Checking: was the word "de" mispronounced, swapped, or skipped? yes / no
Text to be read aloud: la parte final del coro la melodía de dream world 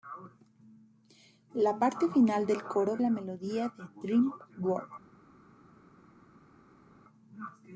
no